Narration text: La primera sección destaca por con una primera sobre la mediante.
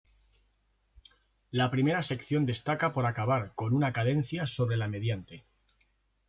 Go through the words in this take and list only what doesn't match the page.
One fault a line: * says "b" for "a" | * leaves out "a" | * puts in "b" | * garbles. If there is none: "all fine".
* puts in "acabar"
* says "cadencia" for "primera"